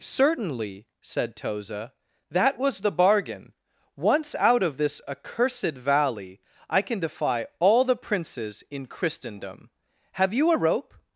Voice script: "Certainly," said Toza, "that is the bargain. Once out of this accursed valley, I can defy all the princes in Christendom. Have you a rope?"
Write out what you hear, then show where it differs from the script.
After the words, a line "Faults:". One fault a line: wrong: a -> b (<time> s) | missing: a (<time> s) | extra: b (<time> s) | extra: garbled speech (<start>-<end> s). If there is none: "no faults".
"Certainly," said Toza, "that was the bargain. Once out of this accursed valley, I can defy all the princes in Christendom. Have you a rope?"
Faults:
wrong: is -> was (2.6 s)